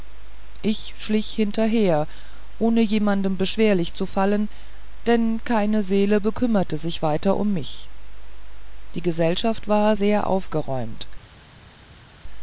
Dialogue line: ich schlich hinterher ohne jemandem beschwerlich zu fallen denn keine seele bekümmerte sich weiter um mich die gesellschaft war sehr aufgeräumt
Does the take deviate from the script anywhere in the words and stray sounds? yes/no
no